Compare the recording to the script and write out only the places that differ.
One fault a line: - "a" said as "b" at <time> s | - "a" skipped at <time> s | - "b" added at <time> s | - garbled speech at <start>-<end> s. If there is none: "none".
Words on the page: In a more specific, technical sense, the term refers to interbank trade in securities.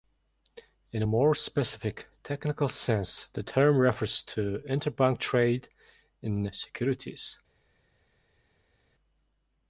none